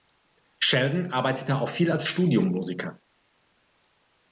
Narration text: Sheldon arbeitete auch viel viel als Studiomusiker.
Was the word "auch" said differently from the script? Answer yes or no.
no